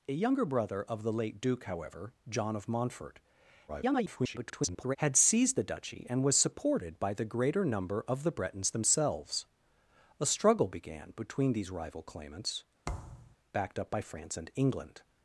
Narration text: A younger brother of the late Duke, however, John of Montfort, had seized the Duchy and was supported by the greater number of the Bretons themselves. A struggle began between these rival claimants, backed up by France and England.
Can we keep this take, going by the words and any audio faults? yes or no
no